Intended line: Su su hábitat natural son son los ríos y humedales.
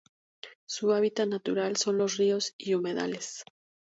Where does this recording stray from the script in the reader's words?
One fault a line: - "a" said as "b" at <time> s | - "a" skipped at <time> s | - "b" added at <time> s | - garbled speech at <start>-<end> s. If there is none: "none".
- "su" skipped at 0.9 s
- "son" skipped at 2.0 s